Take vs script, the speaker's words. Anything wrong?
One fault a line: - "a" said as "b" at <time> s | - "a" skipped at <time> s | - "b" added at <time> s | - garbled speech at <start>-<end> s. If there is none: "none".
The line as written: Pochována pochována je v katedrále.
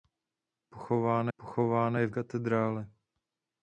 none